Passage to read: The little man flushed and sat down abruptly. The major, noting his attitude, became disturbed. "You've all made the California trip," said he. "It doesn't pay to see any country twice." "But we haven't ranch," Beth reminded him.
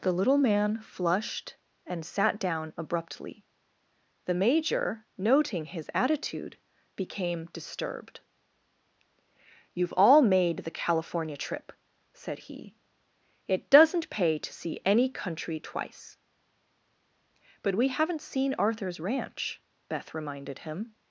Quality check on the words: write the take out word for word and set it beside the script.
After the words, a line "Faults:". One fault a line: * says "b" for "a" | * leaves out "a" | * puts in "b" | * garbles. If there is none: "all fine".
The little man flushed and sat down abruptly. The major, noting his attitude, became disturbed. "You've all made the California trip," said he. "It doesn't pay to see any country twice." "But we haven't seen Arthur's ranch," Beth reminded him.
Faults:
* puts in "seen Arthur's"